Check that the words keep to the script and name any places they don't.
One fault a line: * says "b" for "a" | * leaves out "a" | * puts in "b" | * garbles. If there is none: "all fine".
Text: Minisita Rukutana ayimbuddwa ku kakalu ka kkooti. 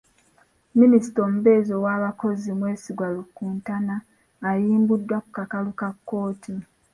* puts in "omubeezi ow'abakozi Mwesigwa"